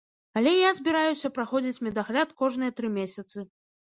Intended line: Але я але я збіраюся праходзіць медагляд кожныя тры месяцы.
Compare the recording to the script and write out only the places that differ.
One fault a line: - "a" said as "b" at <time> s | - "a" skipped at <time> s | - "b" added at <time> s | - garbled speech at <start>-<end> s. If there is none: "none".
- "але я" skipped at 0.7 s